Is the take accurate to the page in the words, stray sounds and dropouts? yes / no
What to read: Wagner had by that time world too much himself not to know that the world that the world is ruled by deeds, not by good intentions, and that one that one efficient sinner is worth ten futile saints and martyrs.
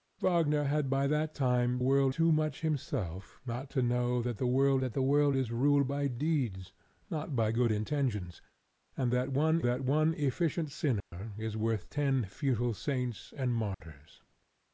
no